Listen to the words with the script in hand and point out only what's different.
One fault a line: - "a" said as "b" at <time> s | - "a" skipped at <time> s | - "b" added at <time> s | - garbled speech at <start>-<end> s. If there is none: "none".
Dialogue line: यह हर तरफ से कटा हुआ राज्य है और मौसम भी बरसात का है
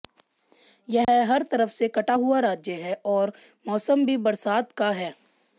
none